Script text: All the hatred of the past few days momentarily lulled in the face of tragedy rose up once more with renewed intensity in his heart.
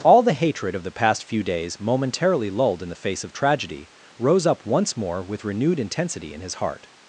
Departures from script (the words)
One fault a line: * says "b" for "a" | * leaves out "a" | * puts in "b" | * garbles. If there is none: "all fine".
all fine